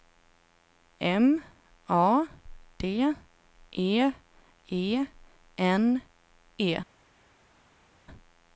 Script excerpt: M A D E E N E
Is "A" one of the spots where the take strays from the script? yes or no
no